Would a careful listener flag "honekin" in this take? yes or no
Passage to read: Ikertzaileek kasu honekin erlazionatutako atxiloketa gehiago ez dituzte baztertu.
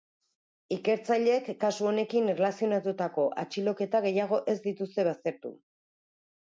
no